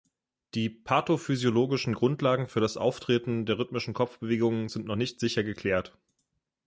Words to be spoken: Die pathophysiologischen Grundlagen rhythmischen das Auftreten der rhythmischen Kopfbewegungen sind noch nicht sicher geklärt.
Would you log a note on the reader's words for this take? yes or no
yes